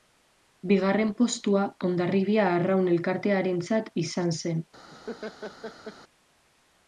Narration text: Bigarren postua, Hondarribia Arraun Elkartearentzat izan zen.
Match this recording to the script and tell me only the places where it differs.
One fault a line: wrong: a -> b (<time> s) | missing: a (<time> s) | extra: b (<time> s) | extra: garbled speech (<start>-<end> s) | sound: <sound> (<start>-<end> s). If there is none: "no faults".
sound: laugh (4.9-6.0 s)